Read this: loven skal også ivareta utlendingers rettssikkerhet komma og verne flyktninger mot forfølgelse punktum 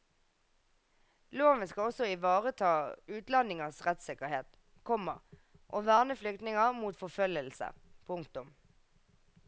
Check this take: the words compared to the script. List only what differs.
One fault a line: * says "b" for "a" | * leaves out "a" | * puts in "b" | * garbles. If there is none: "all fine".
all fine